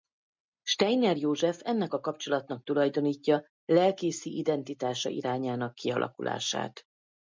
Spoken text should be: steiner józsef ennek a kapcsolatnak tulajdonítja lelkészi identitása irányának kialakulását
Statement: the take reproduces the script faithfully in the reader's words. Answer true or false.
true